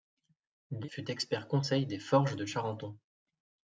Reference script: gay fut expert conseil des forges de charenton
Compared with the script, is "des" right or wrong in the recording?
right